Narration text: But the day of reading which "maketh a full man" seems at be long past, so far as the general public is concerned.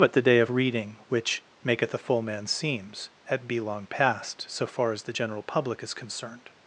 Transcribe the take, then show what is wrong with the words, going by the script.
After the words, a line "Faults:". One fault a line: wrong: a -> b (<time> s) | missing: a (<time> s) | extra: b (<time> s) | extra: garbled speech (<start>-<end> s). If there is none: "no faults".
But the day of reading which "maketh a full man" seems at be long past, so far as the general public is concerned.
Faults:
no faults